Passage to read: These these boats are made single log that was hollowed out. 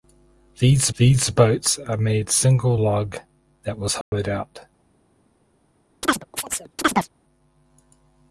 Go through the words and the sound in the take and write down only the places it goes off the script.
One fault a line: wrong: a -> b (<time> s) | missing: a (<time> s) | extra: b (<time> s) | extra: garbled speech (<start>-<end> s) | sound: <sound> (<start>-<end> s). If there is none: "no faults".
sound: dropout (4.0-4.1 s)
sound: chirp (6.0-7.1 s)